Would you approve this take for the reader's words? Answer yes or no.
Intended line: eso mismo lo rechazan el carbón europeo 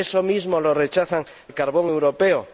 yes